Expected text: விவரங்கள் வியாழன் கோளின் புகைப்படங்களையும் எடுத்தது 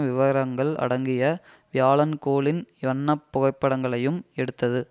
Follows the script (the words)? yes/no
no